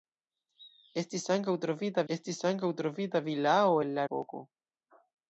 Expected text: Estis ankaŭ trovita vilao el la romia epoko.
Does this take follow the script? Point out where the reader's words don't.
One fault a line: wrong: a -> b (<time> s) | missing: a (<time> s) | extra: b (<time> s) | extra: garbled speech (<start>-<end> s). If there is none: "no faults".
extra: estis ankaŭ trovita (2.1 s)
missing: romia (4.1 s)